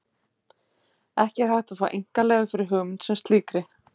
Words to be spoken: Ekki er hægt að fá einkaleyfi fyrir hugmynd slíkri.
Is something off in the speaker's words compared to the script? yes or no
yes